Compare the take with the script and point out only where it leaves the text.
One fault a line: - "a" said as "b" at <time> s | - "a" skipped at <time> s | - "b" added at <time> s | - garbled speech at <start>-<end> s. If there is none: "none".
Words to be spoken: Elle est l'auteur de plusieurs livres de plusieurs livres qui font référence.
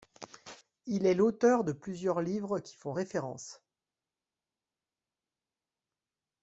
- "Elle" said as "Il" at 0.9 s
- "de plusieurs livres" skipped at 2.6 s